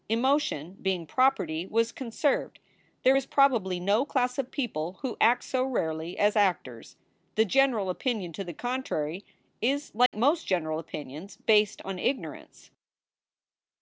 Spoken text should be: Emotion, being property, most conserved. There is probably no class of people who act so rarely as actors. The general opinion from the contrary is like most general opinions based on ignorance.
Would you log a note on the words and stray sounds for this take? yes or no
yes